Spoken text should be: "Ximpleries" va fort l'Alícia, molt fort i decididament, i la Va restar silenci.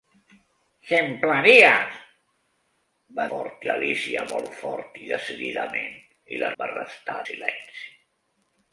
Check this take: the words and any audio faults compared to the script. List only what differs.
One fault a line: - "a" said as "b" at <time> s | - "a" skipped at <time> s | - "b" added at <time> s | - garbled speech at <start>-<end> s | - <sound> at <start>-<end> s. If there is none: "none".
none